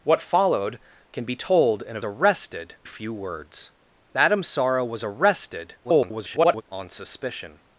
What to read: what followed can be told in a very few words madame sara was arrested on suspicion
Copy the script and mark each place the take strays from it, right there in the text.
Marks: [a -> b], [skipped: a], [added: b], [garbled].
what followed can be told in a [very -> arrested] few words madame sara was arrested [garbled] on suspicion